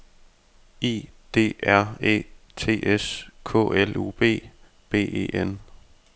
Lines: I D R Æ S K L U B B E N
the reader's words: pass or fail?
fail